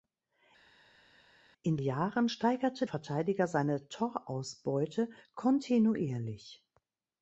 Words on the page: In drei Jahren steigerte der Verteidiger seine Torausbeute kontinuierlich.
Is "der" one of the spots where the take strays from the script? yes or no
yes